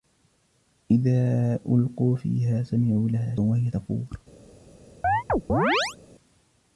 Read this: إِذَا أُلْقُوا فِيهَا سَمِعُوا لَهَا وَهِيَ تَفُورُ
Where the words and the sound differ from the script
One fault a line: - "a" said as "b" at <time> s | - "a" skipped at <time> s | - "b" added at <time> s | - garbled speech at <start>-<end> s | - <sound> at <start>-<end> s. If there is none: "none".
- chirp at 5.0-6.0 s